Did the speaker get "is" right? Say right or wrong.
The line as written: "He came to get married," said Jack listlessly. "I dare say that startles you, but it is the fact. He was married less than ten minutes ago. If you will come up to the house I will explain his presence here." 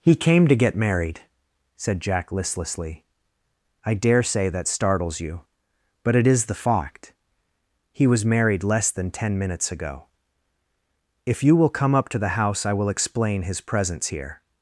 right